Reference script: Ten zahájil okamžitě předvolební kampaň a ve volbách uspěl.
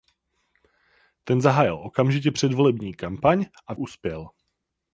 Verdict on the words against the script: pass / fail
fail